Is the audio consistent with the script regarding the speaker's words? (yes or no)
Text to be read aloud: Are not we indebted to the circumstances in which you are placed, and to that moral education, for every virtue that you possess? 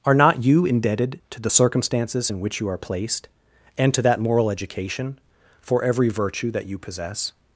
no